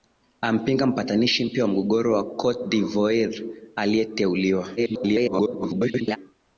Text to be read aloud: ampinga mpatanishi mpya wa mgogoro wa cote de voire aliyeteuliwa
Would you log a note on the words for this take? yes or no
yes